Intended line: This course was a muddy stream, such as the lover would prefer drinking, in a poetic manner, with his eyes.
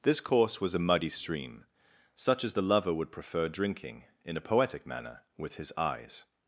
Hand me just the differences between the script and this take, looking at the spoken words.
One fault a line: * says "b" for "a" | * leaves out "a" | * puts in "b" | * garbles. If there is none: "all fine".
all fine